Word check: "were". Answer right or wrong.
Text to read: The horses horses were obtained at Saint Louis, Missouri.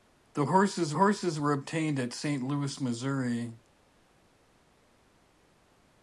right